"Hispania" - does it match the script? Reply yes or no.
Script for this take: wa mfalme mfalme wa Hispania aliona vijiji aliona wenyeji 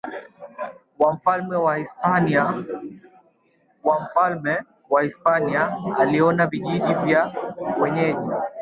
yes